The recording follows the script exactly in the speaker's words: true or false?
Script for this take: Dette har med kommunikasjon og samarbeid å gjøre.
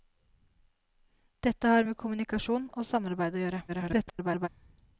false